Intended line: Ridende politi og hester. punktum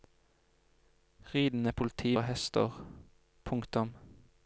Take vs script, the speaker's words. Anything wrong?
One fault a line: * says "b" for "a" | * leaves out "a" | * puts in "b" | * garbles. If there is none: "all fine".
all fine